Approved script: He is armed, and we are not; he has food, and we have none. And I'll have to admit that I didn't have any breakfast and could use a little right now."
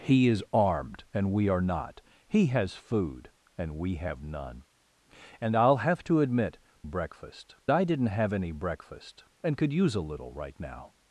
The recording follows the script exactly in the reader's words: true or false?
false